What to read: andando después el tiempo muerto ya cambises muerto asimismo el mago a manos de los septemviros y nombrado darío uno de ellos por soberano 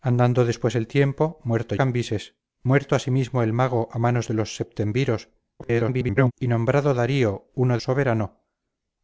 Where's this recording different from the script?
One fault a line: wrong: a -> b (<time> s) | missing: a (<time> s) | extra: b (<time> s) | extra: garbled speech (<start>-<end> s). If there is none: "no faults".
missing: ya (1.8 s)
extra: garbled speech (5.6-6.3 s)
missing: de ellos por (7.8 s)